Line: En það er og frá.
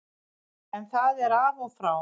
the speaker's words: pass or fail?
fail